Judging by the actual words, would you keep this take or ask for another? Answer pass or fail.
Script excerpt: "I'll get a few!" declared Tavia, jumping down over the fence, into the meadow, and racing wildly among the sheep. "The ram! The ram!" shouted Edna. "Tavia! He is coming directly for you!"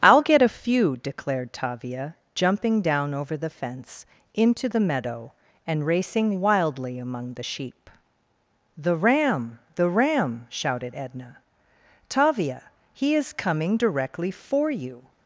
pass